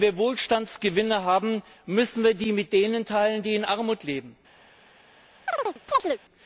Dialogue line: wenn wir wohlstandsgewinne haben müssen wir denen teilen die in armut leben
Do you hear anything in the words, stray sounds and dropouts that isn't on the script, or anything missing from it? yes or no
yes